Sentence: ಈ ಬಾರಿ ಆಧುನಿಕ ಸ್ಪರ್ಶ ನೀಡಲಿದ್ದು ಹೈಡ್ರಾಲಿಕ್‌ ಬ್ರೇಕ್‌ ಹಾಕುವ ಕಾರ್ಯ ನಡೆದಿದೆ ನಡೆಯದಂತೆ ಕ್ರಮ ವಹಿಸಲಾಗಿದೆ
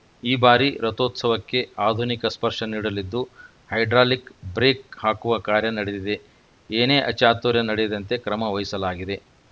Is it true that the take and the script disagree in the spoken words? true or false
true